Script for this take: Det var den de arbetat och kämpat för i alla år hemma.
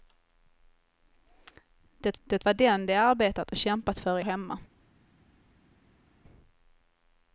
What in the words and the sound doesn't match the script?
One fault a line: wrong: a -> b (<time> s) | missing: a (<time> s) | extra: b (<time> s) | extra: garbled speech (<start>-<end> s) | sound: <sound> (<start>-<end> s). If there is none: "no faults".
extra: det (2.2 s)
missing: alla (4.3 s)